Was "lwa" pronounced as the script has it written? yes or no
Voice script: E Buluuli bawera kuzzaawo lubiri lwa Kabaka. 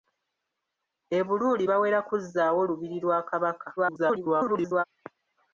yes